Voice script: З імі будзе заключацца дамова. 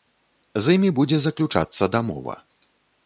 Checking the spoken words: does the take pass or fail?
pass